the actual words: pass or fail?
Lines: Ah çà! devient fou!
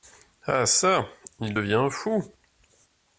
fail